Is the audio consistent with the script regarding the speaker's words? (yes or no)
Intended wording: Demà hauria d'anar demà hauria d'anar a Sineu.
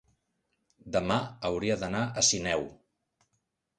no